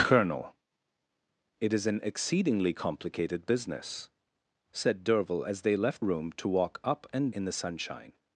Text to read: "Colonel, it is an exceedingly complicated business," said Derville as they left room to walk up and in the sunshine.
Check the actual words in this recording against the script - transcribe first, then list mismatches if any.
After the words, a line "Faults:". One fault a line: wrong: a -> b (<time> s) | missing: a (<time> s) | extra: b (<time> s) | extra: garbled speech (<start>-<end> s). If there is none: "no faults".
"Colonel, it is an exceedingly complicated business," said Derville as they left room to walk up and in the sunshine.
Faults:
no faults